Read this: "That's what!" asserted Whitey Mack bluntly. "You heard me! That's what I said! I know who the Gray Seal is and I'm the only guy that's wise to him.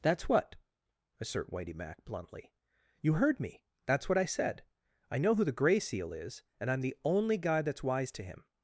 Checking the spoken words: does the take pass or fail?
fail